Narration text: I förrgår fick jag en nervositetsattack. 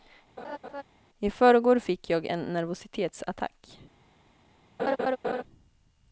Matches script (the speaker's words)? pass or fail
pass